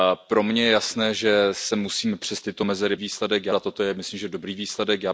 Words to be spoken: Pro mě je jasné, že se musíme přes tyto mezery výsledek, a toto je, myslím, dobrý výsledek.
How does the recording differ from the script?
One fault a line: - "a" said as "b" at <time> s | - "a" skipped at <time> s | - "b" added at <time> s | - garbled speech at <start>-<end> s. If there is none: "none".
none